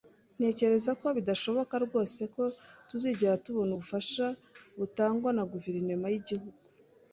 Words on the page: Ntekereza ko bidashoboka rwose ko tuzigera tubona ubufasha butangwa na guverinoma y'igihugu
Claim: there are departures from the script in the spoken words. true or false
false